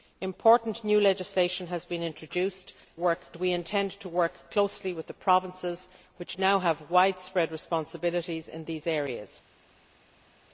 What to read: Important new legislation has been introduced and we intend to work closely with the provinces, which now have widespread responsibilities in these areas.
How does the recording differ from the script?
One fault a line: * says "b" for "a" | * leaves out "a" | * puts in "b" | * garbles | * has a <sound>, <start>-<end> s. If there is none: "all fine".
* says "work" for "and"